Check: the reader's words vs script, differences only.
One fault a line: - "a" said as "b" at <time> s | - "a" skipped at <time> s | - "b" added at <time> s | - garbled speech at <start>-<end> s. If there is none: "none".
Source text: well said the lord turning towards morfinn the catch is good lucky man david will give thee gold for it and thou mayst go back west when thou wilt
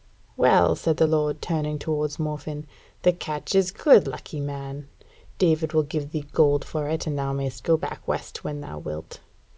none